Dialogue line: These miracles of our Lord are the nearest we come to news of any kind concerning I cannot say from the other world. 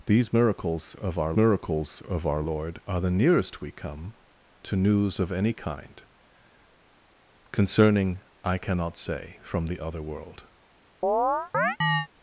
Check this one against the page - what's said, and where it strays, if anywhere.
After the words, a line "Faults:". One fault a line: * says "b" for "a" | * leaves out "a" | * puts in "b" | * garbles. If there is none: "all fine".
These miracles of our miracles of our Lord are the nearest we come to news of any kind concerning I cannot say from the other world.
Faults:
* puts in "miracles of our"